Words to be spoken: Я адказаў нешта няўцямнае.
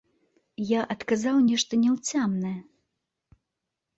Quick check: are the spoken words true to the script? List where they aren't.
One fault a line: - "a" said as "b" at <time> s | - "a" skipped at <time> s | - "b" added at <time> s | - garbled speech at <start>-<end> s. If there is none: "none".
none